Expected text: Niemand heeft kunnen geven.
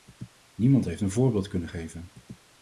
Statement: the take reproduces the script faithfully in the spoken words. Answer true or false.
false